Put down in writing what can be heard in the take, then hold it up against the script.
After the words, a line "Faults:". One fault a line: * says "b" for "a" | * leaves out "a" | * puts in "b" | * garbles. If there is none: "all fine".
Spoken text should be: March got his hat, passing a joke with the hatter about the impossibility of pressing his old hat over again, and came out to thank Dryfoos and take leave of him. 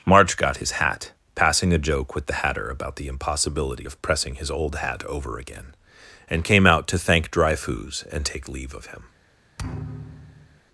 March got his hat, passing a joke with the hatter about the impossibility of pressing his old hat over again, and came out to thank Dryfoos and take leave of him.
Faults:
all fine